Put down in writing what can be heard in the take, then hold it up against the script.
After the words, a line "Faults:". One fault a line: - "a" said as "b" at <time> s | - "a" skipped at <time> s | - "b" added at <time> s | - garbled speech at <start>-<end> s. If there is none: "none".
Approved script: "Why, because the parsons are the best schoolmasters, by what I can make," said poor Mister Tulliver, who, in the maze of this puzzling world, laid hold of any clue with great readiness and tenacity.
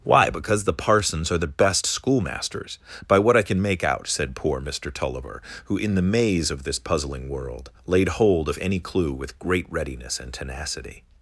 "Why, because the parsons are the best schoolmasters, by what I can make out," said poor Mister Tulliver, who, in the maze of this puzzling world, laid hold of any clue with great readiness and tenacity.
Faults:
- "out" added at 3.8 s